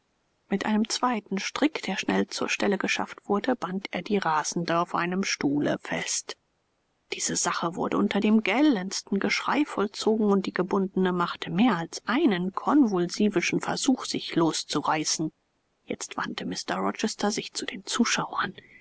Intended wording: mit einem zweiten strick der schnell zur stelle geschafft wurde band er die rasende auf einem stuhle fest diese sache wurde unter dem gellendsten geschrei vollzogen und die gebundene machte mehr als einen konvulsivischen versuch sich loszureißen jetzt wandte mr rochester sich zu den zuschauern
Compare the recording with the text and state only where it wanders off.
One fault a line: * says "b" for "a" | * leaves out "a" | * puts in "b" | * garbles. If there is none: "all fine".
all fine